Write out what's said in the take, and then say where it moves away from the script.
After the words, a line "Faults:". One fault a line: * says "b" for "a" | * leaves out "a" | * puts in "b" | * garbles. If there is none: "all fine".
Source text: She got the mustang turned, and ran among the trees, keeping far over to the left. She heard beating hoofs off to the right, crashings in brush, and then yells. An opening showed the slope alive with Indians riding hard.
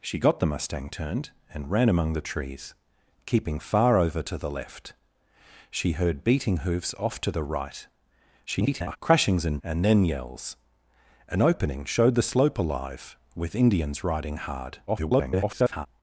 She got the mustang turned, and ran among the trees, keeping far over to the left. She heard beating hoofs off to the right, [garbled] crashings in and then yells. An opening showed the slope alive with Indians riding hard. [garbled]
Faults:
* garbles
* leaves out "brush"
* garbles